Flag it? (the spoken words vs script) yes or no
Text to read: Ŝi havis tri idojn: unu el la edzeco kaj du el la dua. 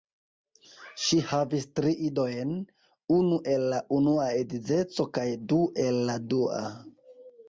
yes